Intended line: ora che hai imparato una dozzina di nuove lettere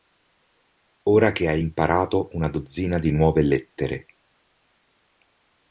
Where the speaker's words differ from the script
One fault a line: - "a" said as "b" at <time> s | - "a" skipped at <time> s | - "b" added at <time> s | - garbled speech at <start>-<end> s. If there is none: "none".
none